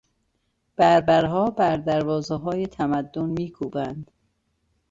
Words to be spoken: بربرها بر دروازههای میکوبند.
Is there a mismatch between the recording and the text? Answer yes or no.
yes